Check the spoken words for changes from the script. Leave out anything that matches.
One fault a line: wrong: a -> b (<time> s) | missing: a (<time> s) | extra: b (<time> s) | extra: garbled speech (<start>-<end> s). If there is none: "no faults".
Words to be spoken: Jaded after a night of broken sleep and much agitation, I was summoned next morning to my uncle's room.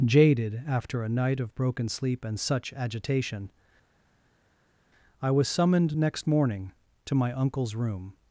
wrong: much -> such (2.4 s)